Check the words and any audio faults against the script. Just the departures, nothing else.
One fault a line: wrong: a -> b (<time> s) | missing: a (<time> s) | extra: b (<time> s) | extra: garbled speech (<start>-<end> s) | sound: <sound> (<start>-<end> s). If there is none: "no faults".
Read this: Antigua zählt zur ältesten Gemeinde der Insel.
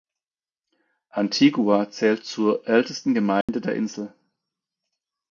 sound: dropout (3.4-3.5 s)